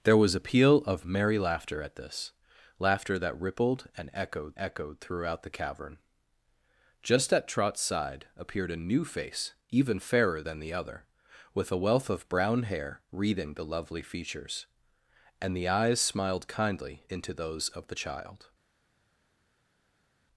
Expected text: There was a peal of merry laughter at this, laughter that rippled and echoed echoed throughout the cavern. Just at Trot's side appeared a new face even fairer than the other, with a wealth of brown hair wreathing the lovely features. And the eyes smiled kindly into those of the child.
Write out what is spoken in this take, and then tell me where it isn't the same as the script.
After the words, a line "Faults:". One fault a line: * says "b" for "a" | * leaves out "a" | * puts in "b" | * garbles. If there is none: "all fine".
There was a peal of merry laughter at this, laughter that rippled and echoed echoed throughout the cavern. Just at Trot's side appeared a new face even fairer than the other, with a wealth of brown hair wreathing the lovely features. And the eyes smiled kindly into those of the child.
Faults:
all fine